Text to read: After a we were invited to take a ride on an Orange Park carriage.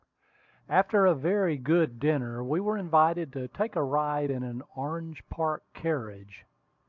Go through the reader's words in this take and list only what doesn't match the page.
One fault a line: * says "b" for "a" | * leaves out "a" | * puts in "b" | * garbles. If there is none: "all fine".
* puts in "very good dinner"
* says "in" for "on"